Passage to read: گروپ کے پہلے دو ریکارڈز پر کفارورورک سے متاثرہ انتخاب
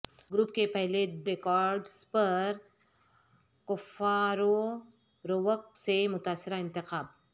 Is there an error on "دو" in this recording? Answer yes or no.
yes